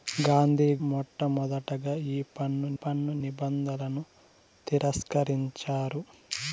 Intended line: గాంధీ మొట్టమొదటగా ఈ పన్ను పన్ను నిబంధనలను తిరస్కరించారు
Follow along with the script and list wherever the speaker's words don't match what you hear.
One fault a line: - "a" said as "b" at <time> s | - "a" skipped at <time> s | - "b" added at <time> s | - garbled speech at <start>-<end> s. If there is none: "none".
none